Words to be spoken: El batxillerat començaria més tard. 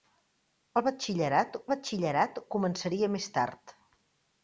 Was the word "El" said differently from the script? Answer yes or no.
no